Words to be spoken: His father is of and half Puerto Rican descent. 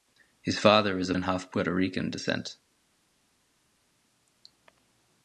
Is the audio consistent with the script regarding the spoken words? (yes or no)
yes